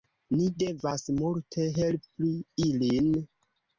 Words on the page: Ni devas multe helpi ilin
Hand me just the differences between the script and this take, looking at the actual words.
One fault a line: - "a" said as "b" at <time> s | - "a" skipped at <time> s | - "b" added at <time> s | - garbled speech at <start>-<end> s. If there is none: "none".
none